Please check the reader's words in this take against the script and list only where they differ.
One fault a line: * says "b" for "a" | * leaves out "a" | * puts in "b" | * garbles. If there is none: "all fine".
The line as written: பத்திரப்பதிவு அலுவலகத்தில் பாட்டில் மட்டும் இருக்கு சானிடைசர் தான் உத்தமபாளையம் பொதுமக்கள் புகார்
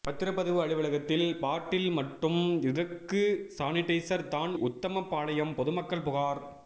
all fine